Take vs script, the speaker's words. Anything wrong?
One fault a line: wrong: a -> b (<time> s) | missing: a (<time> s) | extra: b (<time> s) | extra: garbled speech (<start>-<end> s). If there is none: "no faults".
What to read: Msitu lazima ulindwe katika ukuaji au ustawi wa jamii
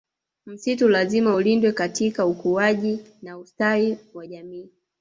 wrong: au -> na (3.2 s)